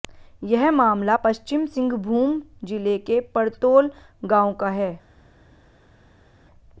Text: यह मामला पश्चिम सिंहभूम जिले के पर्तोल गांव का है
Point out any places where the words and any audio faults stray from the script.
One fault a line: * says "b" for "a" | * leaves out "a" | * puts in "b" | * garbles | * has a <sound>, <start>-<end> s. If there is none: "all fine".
all fine